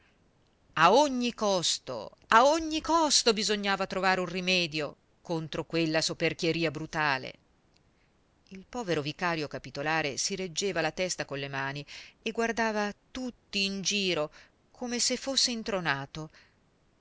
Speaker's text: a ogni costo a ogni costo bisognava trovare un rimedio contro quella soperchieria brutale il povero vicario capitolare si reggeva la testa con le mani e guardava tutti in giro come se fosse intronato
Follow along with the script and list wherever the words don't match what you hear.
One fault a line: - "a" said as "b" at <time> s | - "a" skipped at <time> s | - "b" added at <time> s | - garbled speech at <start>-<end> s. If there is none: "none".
none